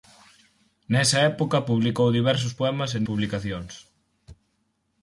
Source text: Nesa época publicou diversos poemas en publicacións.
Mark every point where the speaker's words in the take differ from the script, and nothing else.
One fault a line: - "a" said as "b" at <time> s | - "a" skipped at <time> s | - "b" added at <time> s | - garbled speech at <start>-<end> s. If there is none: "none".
none